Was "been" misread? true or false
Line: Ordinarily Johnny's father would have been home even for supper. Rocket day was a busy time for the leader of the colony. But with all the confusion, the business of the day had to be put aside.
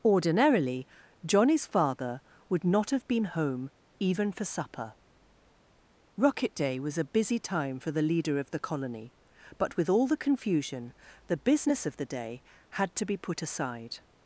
false